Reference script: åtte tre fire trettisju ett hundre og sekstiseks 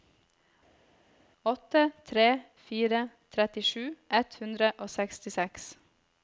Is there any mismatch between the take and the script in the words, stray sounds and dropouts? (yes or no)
no